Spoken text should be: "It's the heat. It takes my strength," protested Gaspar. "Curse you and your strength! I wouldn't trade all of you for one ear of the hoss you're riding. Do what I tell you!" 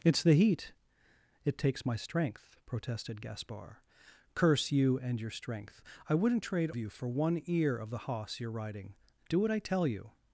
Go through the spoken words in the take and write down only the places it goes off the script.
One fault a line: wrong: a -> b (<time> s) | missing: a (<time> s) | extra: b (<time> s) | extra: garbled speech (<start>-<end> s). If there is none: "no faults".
missing: all of (6.7 s)